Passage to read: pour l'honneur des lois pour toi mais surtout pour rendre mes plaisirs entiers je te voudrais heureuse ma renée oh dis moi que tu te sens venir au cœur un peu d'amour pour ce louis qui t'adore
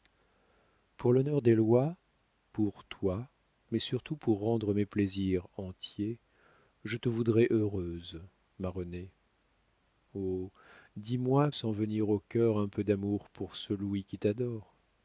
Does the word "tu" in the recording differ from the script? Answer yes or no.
yes